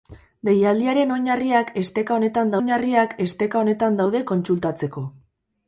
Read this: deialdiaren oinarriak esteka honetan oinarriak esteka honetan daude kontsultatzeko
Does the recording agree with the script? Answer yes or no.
yes